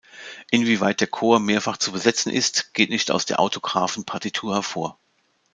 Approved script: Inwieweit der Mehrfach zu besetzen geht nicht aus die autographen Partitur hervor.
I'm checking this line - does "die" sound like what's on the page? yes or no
no